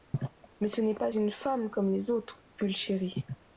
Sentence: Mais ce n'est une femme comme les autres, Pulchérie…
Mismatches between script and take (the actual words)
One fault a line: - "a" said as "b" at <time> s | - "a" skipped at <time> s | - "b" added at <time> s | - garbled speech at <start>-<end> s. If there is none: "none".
- "pas" added at 0.9 s